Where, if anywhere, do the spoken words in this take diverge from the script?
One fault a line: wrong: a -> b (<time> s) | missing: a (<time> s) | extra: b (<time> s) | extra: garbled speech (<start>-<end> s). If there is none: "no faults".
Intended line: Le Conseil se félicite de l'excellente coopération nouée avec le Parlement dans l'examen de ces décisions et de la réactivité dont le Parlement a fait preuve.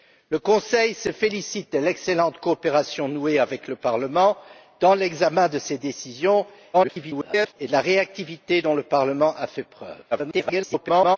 extra: garbled speech (6.7-7.5 s)
extra: garbled speech (10.1-11.2 s)